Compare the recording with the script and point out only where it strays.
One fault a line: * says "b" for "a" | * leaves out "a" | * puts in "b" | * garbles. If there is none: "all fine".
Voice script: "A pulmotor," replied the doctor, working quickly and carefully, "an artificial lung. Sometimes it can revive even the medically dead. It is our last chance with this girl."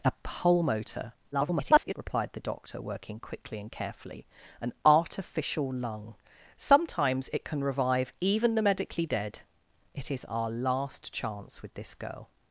* garbles